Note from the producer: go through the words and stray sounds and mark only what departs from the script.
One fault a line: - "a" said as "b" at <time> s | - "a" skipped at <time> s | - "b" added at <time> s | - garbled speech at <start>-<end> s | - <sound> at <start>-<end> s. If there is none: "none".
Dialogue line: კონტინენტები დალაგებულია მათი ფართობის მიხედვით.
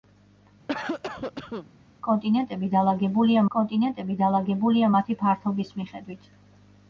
- cough at 0.7-1.7 s
- "კონტინენტები დალაგებულია" added at 3.6 s